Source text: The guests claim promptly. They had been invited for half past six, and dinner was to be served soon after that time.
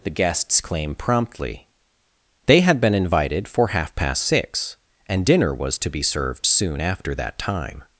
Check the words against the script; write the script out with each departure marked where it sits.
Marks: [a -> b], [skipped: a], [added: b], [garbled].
The guests claim promptly. They had been invited for half past six, and dinner was to be served soon after that time.